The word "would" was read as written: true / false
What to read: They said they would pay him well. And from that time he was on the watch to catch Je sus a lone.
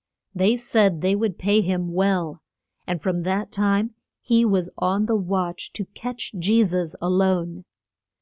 true